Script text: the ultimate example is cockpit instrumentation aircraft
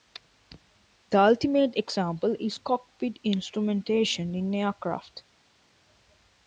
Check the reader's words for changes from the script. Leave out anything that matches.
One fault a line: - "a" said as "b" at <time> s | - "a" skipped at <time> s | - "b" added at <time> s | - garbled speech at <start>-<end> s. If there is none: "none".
- "in" added at 4.3 s